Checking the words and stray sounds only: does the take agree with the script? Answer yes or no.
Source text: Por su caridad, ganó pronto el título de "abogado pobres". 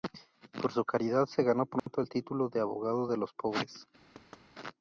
no